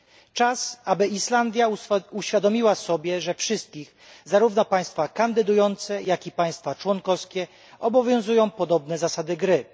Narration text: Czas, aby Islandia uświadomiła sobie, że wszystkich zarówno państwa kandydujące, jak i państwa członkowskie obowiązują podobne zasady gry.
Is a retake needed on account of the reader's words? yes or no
no